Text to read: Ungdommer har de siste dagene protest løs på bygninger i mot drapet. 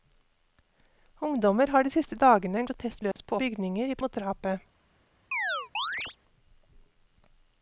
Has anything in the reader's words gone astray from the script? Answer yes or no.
no